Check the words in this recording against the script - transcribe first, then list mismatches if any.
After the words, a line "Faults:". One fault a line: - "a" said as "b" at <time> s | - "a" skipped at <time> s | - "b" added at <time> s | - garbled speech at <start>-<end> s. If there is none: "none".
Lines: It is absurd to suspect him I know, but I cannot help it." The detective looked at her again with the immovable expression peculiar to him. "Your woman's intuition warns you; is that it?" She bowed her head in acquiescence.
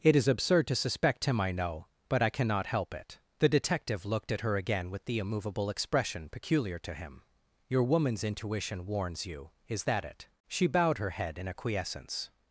It is absurd to suspect him I know, but I cannot help it." The detective looked at her again with the immovable expression peculiar to him. "Your woman's intuition warns you; is that it?" She bowed her head in acquiescence.
Faults:
none